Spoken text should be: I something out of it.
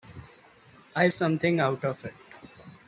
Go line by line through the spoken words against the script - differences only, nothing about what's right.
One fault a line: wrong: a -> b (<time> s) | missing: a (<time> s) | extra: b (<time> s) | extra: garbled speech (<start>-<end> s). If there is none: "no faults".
no faults